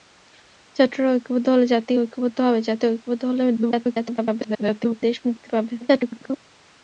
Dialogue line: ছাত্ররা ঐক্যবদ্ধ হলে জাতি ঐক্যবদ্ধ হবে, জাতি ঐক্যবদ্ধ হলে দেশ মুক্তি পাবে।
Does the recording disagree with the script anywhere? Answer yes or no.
yes